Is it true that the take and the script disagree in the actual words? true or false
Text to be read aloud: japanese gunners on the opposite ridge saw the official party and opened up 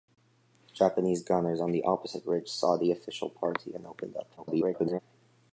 true